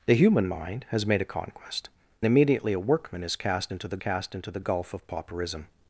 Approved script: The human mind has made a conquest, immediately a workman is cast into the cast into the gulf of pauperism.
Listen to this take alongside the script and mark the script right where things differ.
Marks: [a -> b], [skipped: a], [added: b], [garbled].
The human mind has made a conquest, immediately a workman is cast into the cast into the gulf of pauperism.